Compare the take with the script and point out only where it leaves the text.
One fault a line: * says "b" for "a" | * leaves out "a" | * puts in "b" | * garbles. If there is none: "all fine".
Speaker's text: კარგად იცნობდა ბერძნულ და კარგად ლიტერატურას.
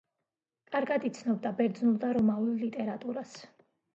* says "რომაულ" for "კარგად"